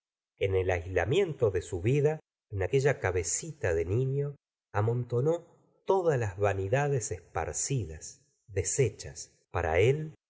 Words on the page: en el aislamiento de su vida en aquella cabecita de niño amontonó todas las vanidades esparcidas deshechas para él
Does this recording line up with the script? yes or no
yes